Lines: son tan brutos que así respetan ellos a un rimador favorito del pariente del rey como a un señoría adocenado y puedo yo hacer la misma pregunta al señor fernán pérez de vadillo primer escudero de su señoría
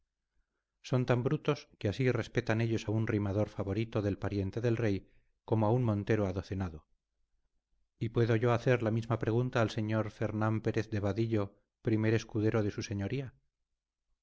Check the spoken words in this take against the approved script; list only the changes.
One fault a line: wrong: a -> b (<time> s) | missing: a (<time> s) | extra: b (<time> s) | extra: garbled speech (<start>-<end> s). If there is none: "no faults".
wrong: señoría -> montero (5.8 s)